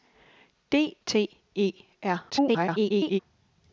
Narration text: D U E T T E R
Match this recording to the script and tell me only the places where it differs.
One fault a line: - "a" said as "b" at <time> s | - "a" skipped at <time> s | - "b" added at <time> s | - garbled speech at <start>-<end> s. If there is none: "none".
- "U E T" skipped at 1.0 s
- garbled speech at 2.3-3.2 s